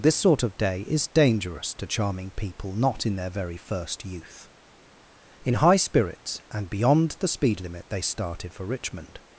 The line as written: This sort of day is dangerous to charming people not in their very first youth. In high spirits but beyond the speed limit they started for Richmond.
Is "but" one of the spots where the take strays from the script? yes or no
yes